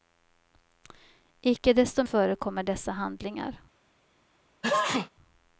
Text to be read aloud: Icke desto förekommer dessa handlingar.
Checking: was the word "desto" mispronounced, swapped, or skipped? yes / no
no